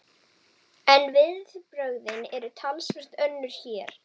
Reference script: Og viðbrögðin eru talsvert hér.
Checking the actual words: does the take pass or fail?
fail